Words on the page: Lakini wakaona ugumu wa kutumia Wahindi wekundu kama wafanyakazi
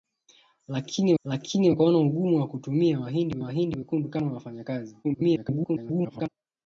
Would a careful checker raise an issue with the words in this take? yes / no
yes